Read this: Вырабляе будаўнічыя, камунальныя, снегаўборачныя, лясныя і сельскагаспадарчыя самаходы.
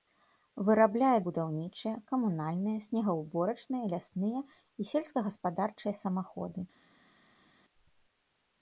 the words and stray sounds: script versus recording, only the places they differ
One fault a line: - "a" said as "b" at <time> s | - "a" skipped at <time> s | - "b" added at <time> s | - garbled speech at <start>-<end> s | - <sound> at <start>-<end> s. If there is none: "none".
none